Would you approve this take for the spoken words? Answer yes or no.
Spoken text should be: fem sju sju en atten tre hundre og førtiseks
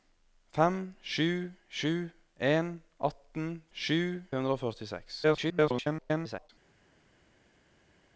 no